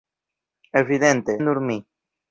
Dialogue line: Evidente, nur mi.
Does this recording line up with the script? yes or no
yes